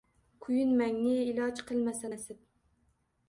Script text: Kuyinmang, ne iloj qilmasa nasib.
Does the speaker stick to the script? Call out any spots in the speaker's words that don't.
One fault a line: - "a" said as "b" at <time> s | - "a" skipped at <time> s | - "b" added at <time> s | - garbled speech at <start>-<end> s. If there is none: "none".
none